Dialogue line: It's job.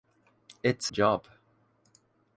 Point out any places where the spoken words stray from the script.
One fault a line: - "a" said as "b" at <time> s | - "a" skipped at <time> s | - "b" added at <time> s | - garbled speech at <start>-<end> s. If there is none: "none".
none